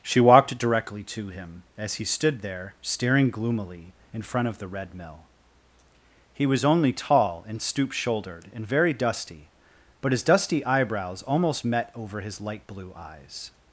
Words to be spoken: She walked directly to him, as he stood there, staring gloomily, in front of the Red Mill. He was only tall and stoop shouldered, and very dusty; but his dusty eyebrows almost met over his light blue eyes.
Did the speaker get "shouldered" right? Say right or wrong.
right